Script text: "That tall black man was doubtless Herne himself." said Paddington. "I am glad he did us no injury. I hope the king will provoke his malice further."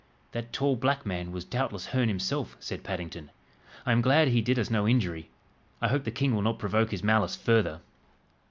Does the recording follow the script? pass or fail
fail